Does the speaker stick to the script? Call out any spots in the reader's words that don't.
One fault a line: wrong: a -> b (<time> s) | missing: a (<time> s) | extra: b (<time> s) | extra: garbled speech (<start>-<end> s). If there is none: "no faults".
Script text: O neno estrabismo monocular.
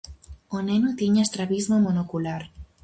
extra: tiña (1.0 s)